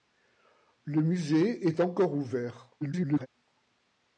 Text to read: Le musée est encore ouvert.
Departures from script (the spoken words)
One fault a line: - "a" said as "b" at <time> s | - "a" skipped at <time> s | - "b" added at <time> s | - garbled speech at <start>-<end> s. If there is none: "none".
- garbled speech at 2.8-3.3 s